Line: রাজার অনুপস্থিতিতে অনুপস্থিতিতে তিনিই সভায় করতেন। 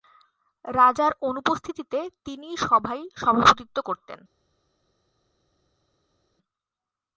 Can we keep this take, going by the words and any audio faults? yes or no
no